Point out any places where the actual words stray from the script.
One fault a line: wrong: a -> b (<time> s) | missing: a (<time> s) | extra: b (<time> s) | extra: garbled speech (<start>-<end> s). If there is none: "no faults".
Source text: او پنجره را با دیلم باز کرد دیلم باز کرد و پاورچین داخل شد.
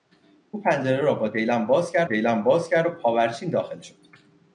no faults